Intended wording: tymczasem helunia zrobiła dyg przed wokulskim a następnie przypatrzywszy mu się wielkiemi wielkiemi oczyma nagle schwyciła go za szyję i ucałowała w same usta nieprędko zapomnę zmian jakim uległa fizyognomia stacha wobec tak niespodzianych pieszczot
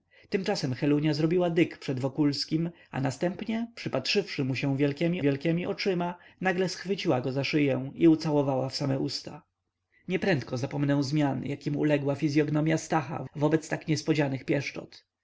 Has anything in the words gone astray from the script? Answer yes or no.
no